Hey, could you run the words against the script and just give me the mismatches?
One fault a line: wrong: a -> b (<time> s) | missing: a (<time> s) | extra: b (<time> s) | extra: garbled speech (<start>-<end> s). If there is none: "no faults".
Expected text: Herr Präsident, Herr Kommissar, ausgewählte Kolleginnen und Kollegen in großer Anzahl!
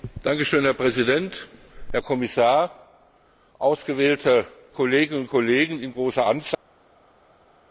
no faults